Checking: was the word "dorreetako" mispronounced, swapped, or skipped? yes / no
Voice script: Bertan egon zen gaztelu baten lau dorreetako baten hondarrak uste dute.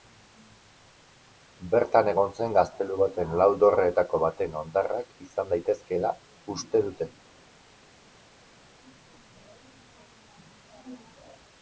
no